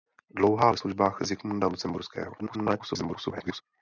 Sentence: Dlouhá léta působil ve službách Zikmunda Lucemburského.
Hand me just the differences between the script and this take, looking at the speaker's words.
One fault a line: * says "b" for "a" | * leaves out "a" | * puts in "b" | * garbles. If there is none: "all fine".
* leaves out "léta působil"
* garbles